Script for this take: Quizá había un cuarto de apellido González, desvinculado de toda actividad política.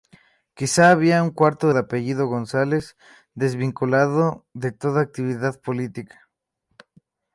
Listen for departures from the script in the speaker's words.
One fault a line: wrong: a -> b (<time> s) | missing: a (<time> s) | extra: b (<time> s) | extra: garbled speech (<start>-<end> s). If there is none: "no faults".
no faults